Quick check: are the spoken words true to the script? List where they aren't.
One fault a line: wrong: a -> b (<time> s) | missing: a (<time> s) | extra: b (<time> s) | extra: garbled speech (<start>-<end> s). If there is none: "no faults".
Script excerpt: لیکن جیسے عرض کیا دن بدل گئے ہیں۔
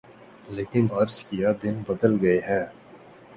missing: جیسے (0.9 s)